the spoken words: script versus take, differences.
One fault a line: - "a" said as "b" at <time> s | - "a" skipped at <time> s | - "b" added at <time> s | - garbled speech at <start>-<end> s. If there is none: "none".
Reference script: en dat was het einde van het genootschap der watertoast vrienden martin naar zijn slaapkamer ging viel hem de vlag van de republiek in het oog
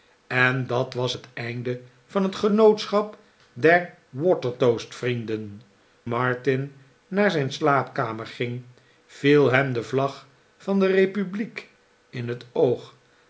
none